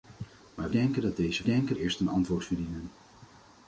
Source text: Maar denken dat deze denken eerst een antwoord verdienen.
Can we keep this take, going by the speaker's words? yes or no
yes